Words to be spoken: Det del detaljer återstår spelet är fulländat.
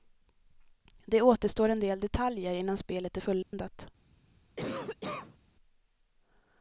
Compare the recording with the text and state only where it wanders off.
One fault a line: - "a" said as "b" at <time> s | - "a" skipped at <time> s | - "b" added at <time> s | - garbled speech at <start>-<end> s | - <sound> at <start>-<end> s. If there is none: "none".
- "återstår en" added at 1.2 s
- "återstår" said as "innan" at 2.5 s
- dropout at 3.4-3.5 s
- cough at 4.6-5.4 s